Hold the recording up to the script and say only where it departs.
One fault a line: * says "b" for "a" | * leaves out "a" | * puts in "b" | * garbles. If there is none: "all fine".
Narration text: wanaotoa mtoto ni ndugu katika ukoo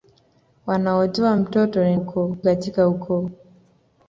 * says "ukoo" for "ndugu"